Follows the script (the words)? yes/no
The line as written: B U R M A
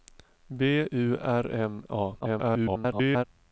no